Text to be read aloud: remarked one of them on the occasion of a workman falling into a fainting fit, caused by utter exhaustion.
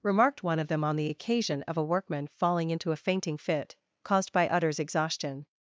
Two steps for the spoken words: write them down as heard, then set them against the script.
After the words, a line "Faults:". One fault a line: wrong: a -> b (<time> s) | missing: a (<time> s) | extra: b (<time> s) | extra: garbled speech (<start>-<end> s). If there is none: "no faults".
remarked one of them on the occasion of a workman falling into a fainting fit, caused by utters exhaustion.
Faults:
wrong: utter -> utters (4.5 s)